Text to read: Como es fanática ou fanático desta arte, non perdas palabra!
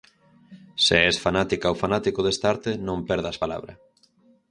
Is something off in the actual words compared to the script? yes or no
yes